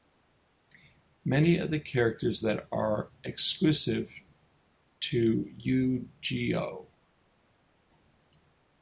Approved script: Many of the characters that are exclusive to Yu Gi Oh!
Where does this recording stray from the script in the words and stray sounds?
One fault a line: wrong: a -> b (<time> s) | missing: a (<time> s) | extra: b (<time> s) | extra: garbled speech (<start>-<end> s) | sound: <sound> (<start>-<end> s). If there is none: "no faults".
no faults